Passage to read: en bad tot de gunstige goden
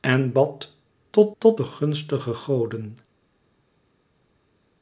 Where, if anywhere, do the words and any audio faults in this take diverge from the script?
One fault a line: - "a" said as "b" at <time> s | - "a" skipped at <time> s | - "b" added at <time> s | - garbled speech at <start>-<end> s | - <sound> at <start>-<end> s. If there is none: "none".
- "tot" added at 1.4 s